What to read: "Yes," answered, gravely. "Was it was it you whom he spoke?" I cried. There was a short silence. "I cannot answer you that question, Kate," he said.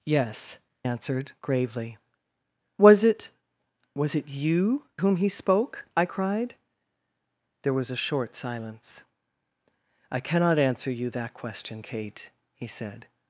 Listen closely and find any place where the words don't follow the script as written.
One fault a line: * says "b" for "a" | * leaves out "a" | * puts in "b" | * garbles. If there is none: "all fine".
all fine